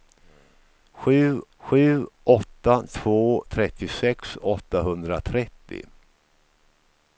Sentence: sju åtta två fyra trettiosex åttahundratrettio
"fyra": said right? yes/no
no